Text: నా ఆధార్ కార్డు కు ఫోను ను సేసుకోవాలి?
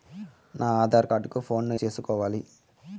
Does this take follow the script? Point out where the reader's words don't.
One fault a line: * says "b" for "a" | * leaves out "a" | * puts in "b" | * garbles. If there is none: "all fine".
all fine